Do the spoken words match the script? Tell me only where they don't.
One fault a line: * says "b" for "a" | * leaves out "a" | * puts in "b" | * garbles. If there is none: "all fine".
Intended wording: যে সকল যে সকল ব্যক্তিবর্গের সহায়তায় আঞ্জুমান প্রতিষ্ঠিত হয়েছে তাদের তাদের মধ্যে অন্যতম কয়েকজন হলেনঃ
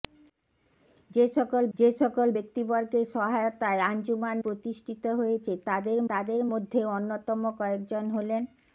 all fine